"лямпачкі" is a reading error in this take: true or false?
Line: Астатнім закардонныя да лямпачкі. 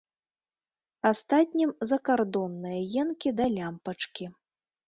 false